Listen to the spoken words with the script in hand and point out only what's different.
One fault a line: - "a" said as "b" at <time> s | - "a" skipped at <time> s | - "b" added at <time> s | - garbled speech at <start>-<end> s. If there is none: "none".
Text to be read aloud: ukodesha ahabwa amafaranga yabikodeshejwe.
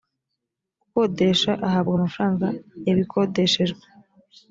none